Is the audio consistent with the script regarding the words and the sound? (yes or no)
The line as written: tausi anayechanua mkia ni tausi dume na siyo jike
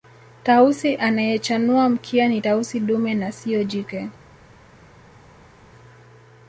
yes